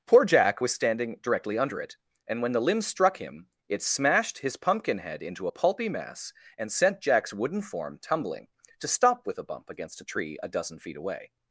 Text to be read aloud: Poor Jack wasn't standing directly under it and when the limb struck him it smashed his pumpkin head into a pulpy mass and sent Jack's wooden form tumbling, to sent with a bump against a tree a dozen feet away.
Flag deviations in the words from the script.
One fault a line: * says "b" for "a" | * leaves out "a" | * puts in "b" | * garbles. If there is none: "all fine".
* says "was" for "wasn't"
* says "stop" for "sent"